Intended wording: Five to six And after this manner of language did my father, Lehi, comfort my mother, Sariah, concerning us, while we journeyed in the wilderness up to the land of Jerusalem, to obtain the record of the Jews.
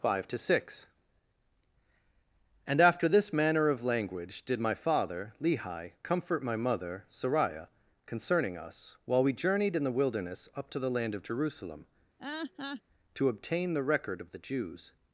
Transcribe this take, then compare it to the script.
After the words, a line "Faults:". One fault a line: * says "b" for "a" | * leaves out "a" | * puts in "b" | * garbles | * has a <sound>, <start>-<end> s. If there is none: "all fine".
Five to six And after this manner of language did my father, Lehi, comfort my mother, Sariah, concerning us, while we journeyed in the wilderness up to the land of Jerusalem, to obtain the record of the Jews.
Faults:
* has a laugh, 12.2-12.8 s